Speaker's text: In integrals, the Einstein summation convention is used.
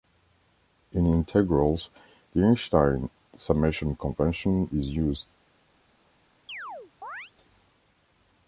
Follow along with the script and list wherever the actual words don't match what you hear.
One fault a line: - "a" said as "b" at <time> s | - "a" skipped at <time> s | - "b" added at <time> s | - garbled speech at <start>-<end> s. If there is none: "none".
none